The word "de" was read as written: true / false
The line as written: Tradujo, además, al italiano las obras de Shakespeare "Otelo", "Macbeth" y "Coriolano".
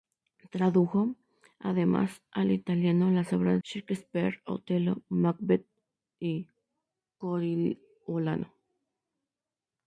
false